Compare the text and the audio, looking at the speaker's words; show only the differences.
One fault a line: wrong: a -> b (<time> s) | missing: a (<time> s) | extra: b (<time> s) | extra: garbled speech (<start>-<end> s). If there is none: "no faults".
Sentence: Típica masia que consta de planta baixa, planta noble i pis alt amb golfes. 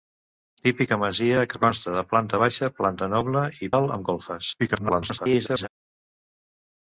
missing: pis (3.7 s)
extra: garbled speech (4.6-5.7 s)